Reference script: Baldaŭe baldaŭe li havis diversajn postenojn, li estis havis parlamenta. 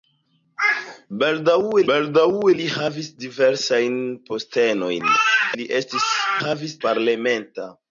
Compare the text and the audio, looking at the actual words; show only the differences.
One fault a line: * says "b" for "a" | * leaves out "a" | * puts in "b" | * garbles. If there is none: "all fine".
all fine